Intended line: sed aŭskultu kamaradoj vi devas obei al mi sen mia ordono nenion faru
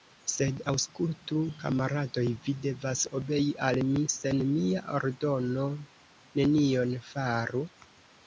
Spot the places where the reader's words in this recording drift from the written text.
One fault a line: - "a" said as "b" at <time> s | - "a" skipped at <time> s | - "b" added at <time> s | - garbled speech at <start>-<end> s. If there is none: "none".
none